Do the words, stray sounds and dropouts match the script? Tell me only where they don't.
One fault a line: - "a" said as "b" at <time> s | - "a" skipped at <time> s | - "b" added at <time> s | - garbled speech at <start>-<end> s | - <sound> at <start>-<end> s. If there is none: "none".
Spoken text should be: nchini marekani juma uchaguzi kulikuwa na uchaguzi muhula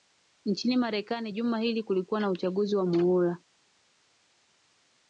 - "uchaguzi" said as "hili" at 1.6 s
- "wa" added at 2.8 s